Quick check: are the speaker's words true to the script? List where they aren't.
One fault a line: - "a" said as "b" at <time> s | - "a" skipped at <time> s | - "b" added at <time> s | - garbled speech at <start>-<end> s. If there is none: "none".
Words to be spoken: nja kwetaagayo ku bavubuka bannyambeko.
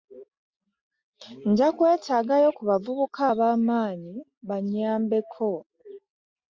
- "ab'amaanyi" added at 3.3 s